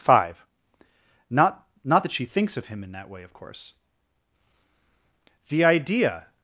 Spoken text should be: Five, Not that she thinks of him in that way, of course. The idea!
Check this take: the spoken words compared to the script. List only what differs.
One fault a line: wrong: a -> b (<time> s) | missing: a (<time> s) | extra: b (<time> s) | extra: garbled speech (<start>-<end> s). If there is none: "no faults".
extra: Not (1.9 s)